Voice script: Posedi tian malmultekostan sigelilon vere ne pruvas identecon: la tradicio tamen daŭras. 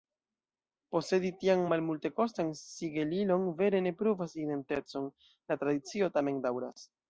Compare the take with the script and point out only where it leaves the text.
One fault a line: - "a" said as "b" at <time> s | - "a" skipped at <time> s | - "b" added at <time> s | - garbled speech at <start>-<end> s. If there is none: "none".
none